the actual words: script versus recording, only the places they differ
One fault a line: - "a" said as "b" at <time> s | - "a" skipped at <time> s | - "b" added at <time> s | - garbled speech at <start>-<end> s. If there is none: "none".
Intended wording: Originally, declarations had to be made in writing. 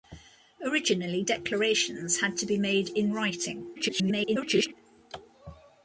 - garbled speech at 3.8-4.7 s